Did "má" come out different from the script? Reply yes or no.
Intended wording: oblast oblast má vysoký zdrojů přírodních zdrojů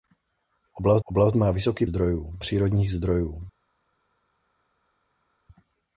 no